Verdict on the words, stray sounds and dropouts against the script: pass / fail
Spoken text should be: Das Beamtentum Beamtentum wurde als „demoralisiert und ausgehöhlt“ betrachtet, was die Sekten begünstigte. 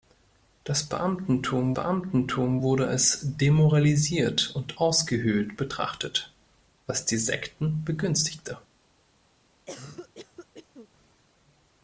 fail